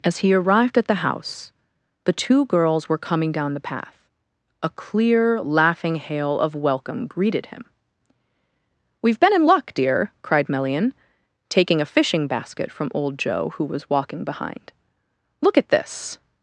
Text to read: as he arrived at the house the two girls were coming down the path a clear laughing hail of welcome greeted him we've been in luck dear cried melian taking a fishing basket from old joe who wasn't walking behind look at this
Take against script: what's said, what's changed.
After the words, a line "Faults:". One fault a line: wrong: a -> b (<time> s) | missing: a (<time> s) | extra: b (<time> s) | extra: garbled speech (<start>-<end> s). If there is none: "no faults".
as he arrived at the house the two girls were coming down the path a clear laughing hail of welcome greeted him we've been in luck dear cried melian taking a fishing basket from old joe who was walking behind look at this
Faults:
wrong: wasn't -> was (13.6 s)